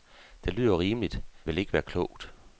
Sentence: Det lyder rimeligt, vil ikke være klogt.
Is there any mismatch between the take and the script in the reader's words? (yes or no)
no